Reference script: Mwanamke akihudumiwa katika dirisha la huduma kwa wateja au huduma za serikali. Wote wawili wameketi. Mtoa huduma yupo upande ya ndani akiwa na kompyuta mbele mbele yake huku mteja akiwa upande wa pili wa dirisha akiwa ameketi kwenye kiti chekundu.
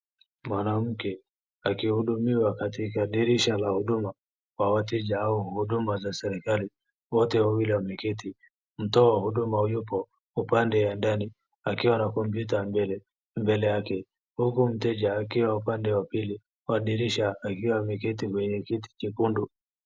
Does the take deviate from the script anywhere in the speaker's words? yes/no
no